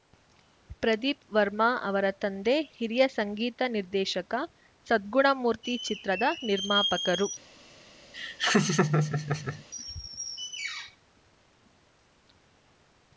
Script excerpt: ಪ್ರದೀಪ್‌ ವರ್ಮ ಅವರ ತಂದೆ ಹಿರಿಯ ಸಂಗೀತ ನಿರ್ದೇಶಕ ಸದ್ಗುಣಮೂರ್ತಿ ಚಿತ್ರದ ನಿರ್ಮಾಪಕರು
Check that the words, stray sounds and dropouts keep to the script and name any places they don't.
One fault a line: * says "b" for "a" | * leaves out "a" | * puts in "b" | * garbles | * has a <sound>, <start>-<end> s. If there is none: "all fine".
* has a laugh, 8.1-9.6 s